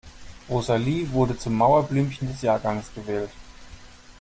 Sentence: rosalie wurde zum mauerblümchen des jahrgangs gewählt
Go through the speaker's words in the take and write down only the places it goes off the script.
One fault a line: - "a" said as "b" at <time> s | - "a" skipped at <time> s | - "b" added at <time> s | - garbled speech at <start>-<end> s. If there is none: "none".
none